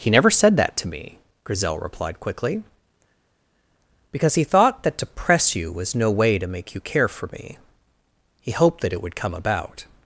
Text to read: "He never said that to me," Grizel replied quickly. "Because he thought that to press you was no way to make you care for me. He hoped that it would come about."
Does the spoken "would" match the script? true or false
true